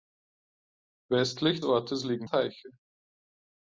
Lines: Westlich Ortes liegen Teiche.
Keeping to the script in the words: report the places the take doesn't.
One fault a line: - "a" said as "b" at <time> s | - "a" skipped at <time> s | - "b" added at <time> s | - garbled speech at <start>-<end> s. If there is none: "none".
none